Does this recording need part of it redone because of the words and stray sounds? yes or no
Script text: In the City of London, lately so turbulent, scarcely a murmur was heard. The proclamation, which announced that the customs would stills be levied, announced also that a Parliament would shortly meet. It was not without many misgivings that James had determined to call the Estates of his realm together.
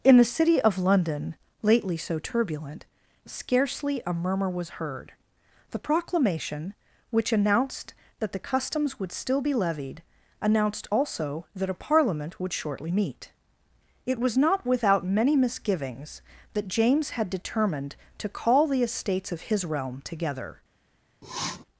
yes